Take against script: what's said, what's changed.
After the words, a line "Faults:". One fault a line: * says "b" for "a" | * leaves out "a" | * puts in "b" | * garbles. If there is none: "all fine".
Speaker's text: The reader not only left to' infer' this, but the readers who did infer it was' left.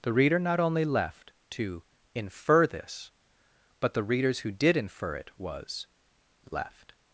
The reader not only left to' infer' this, but the readers who did infer it was' left.
Faults:
all fine